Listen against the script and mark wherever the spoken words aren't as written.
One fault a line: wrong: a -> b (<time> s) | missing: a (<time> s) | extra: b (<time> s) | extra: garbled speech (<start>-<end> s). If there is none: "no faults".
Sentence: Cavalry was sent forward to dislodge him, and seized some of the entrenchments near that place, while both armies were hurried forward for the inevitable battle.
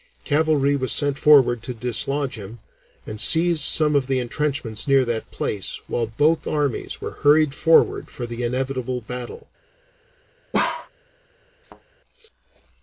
no faults